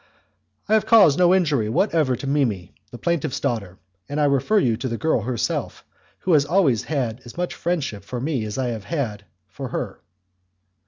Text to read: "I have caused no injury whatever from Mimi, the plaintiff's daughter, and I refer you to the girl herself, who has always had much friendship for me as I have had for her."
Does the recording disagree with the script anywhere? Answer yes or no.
yes